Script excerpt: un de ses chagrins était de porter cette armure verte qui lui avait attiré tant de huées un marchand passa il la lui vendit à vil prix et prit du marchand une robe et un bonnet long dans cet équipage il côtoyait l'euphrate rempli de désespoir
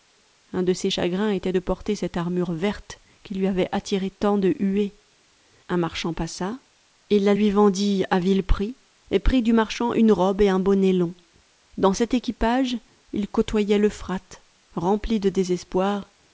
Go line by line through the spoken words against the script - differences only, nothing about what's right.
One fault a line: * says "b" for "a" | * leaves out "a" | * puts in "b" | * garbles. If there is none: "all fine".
all fine